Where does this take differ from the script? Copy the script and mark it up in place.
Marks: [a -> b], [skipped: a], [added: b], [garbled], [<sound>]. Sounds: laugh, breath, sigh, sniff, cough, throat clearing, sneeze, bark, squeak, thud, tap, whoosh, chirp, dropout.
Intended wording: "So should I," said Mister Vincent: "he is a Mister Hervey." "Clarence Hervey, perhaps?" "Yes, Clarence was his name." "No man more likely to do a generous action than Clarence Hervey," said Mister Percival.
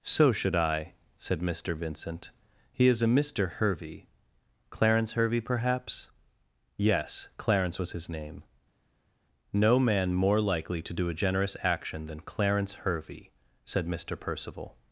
"So should I," said Mister Vincent: "he is a Mister Hervey." "Clarence Hervey, perhaps?" "Yes, Clarence was his name." "No man more likely to do a generous action than Clarence Hervey," said Mister Percival.